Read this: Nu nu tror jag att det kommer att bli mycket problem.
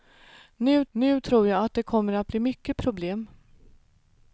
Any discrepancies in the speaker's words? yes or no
no